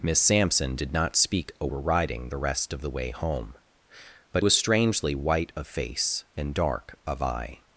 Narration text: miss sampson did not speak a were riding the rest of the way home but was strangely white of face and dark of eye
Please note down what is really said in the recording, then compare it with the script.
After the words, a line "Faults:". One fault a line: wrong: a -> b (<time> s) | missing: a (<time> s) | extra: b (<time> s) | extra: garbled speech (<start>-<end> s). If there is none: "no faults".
miss sampson did not speak a were riding the rest of the way home but was strangely white of face and dark of eye
Faults:
no faults